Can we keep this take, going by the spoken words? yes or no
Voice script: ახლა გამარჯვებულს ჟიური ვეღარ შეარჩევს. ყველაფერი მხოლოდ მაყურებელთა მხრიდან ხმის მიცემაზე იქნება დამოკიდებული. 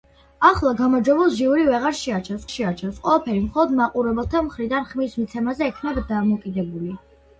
no